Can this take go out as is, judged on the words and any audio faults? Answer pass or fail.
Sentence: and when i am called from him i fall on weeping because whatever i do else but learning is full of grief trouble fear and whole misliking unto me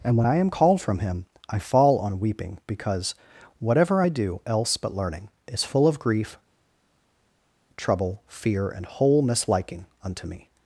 pass